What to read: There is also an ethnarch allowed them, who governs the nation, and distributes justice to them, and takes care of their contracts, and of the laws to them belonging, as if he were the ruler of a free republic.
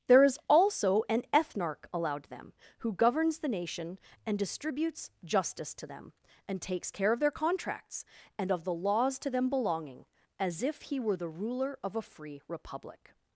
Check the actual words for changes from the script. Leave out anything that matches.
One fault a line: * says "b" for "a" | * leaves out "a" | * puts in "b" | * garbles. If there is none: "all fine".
all fine